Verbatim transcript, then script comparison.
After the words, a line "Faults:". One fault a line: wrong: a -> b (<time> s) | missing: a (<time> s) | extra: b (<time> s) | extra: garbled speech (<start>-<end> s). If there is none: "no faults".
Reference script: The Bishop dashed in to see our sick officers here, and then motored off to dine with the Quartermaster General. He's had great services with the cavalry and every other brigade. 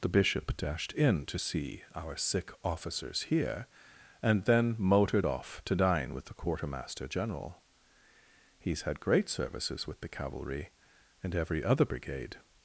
The Bishop dashed in to see our sick officers here, and then motored off to dine with the Quartermaster General. He's had great services with the cavalry and every other brigade.
Faults:
no faults